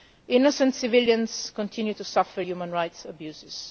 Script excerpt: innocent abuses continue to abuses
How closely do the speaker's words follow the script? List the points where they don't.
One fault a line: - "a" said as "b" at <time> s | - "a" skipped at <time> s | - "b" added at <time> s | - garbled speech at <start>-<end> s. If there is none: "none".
- "abuses" said as "civilians" at 0.8 s
- "suffer human rights" added at 2.0 s